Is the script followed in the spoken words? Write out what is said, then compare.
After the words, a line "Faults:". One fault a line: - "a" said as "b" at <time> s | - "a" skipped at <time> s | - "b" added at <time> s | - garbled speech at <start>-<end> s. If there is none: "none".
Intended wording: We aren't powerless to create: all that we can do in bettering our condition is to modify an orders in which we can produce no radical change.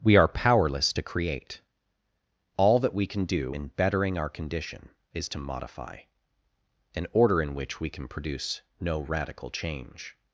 We are powerless to create: all that we can do in bettering our condition is to modify an order in which we can produce no radical change.
Faults:
- "aren't" said as "are" at 0.1 s
- "orders" said as "order" at 7.1 s